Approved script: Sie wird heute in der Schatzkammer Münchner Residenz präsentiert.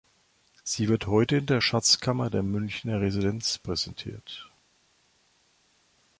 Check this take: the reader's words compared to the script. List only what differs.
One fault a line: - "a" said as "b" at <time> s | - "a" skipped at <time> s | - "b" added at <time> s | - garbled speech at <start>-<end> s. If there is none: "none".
- "der" added at 2.3 s